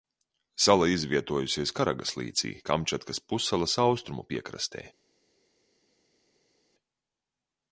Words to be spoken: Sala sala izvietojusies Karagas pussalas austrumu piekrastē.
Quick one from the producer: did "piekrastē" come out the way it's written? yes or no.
yes